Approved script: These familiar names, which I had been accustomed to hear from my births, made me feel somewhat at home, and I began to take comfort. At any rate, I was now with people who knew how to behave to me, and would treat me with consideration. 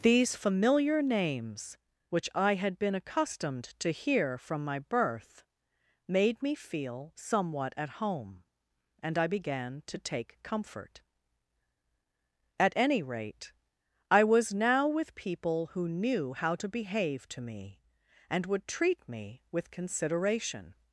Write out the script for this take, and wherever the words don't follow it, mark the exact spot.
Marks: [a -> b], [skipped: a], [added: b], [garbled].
These familiar names, which I had been accustomed to hear from my [births, -> birth] made me feel somewhat at home, and I began to take comfort. At any rate, I was now with people who knew how to behave to me, and would treat me with consideration.